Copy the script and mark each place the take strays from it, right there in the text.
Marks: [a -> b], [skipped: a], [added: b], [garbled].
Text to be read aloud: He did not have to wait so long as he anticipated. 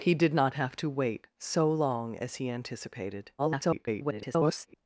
He did not have to wait so long as he anticipated. [garbled]